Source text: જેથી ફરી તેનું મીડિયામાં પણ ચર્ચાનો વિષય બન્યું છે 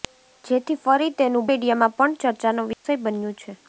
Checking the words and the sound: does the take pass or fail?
fail